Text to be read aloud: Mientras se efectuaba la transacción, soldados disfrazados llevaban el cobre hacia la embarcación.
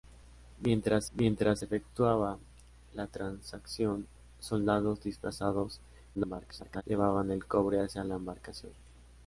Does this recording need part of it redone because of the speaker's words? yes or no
yes